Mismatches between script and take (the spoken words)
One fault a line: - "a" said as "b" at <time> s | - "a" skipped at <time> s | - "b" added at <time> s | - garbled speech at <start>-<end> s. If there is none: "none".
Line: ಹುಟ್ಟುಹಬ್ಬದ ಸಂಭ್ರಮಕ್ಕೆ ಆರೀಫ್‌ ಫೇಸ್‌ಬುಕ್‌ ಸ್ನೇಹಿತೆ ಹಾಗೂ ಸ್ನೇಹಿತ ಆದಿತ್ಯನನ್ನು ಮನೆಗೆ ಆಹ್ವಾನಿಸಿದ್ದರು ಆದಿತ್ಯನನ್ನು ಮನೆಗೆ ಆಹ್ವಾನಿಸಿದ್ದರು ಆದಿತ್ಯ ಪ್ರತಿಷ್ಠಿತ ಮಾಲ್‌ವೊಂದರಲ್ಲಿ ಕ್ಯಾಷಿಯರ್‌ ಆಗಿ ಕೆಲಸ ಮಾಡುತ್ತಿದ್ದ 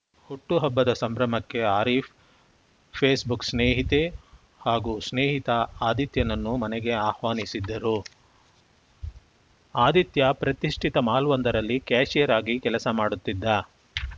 - "ಆದಿತ್ಯನನ್ನು ಮನೆಗೆ ಆಹ್ವಾನಿಸಿದ್ದರು" skipped at 7.9 s